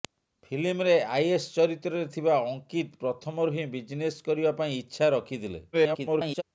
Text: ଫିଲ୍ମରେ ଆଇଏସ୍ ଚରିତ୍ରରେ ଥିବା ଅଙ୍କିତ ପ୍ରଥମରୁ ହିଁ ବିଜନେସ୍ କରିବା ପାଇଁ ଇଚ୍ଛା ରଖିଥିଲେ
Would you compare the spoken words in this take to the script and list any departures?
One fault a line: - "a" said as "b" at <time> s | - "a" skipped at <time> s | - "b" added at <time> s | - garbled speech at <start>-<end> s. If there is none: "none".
- garbled speech at 5.7-6.4 s